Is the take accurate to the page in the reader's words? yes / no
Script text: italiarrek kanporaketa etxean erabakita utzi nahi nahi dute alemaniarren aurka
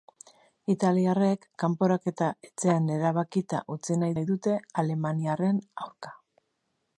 yes